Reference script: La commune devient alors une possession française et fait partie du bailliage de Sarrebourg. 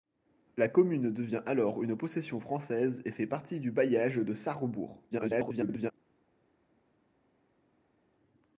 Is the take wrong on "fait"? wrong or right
right